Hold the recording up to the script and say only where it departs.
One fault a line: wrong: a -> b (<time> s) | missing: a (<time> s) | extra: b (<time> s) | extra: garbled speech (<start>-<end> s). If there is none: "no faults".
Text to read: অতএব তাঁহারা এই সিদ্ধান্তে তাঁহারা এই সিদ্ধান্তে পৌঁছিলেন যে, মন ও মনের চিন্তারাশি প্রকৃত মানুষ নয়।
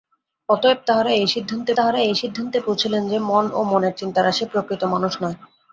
no faults